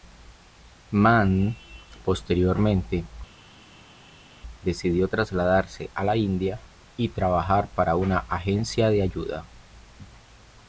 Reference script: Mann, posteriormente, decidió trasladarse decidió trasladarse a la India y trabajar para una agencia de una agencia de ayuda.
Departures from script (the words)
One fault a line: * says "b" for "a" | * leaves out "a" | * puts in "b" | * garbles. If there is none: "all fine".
* leaves out "decidió trasladarse"
* leaves out "una agencia de"